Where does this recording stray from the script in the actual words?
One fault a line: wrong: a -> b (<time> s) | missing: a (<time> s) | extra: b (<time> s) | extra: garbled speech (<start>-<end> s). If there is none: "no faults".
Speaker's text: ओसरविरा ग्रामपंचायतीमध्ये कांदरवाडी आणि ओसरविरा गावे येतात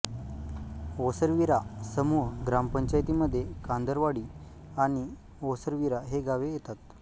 extra: समूह (1.9 s)
extra: ही (6.1 s)